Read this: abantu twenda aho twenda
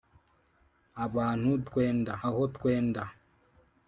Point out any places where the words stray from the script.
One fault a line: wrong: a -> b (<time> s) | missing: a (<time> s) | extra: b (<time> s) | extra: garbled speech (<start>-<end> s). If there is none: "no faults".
no faults